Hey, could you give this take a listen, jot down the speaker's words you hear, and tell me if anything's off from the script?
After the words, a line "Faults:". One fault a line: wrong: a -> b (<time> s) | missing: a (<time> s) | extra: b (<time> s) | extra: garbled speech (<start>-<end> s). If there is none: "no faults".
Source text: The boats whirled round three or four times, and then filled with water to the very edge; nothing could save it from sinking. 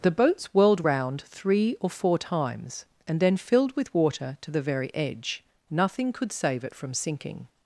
The boats whirled round three or four times, and then filled with water to the very edge; nothing could save it from sinking.
Faults:
no faults